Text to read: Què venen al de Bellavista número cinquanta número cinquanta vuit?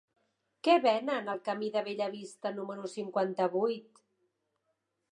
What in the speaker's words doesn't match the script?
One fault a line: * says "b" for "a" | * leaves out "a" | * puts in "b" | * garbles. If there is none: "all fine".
* puts in "camí"
* leaves out "número cinquanta"